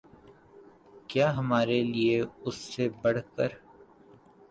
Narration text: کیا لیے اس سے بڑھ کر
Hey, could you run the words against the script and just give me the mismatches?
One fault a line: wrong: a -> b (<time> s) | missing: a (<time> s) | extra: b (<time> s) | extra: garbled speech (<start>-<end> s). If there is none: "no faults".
extra: ہمارے (1.4 s)